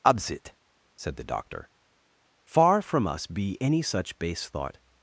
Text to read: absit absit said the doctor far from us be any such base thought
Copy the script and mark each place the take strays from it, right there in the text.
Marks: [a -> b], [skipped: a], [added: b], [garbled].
absit [skipped: absit] said the doctor far from us be any such base thought